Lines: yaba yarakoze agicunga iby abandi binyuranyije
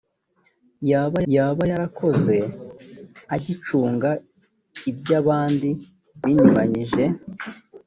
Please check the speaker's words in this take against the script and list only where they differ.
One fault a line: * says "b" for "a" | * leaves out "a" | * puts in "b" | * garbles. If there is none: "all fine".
* puts in "yaba"